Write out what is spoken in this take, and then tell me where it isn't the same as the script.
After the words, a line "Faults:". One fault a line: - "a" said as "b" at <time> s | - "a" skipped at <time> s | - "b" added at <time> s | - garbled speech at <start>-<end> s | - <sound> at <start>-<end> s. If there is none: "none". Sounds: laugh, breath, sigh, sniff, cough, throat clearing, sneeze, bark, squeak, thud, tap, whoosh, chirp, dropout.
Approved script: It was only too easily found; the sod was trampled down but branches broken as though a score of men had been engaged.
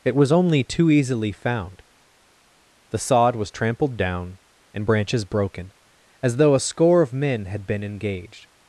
It was only too easily found; the sod was trampled down and branches broken as though a score of men had been engaged.
Faults:
- "but" said as "and" at 4.7 s